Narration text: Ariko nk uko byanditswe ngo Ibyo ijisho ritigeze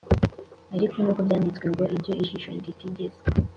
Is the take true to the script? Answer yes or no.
yes